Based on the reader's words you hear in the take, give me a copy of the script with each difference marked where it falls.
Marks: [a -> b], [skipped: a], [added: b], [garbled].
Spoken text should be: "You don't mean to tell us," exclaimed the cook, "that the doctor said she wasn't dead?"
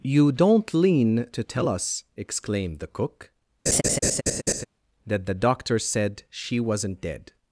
"You don't [mean -> lean] to tell us," exclaimed the cook, "that the doctor said she wasn't dead?"